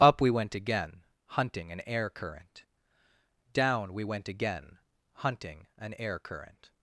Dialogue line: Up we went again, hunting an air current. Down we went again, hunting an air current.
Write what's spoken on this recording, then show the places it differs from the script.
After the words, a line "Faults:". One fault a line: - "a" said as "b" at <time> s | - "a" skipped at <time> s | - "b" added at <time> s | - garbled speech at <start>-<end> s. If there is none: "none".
Up we went again, hunting an air current. Down we went again, hunting an air current.
Faults:
none